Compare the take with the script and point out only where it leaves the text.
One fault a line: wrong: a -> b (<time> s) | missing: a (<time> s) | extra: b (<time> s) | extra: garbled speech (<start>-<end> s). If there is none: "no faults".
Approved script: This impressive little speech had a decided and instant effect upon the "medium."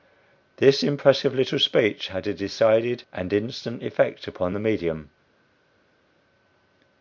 no faults